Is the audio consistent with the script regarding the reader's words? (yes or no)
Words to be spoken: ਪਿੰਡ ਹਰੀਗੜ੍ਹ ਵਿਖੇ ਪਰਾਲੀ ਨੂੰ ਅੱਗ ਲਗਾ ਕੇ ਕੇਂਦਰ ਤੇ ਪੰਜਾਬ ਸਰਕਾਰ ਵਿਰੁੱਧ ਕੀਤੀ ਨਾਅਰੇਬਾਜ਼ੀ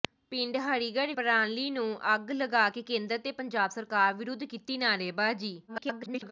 no